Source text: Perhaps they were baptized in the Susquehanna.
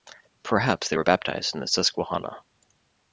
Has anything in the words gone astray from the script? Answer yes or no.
no